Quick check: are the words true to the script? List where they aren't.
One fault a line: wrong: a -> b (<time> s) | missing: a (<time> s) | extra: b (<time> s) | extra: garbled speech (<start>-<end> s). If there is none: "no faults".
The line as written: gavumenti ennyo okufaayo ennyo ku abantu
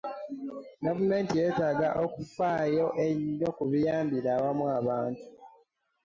wrong: ennyo -> yeetaaga (1.4 s)
extra: biyambira awamu (3.7 s)